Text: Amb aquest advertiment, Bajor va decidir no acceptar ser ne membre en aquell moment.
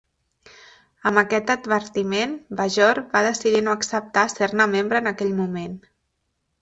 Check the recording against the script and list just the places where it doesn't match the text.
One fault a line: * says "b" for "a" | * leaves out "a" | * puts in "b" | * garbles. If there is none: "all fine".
all fine